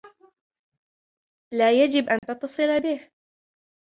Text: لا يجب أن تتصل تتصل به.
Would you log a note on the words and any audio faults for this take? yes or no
yes